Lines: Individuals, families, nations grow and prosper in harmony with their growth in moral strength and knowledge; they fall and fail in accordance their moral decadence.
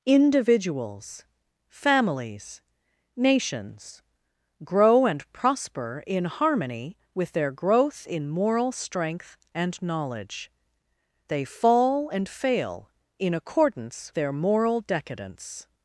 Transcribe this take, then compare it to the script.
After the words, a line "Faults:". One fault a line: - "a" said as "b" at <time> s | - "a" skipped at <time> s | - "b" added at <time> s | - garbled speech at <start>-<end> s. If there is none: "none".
Individuals, families, nations grow and prosper in harmony with their growth in moral strength and knowledge; they fall and fail in accordance their moral decadence.
Faults:
none